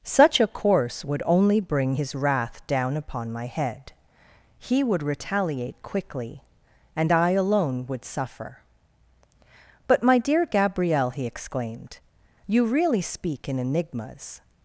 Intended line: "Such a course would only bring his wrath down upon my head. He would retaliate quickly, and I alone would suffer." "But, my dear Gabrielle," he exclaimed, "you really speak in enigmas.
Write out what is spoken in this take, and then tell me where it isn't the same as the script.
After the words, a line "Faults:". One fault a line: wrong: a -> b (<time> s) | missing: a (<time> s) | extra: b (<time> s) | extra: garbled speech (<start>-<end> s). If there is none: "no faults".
"Such a course would only bring his wrath down upon my head. He would retaliate quickly, and I alone would suffer." "But, my dear Gabrielle," he exclaimed, "you really speak in enigmas.
Faults:
no faults